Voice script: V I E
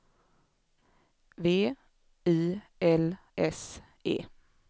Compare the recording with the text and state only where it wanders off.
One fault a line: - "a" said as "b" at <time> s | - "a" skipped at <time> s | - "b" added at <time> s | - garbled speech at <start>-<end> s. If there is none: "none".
- "L S" added at 2.8 s